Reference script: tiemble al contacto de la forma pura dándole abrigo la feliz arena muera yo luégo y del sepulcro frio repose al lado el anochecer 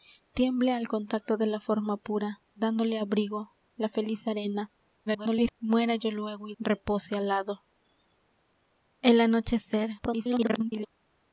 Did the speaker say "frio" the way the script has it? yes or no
no